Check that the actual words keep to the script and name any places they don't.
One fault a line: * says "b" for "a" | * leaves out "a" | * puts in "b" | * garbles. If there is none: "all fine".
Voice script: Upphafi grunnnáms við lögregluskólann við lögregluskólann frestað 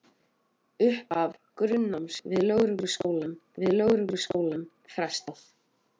all fine